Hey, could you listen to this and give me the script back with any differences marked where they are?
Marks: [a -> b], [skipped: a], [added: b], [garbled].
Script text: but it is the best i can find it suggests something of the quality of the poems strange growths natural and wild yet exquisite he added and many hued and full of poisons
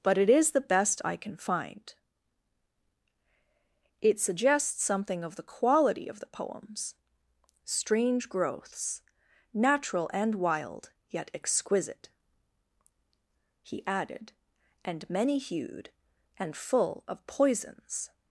but it is the best i can find it suggests something of the quality of the poems strange growths natural and wild yet exquisite he added and many hued and full of poisons